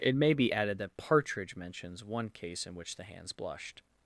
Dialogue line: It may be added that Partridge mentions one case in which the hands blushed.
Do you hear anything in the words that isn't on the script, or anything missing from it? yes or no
no